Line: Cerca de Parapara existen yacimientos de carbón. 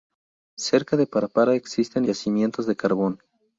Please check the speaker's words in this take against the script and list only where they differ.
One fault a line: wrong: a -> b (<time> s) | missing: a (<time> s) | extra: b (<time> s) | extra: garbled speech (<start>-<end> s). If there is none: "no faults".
no faults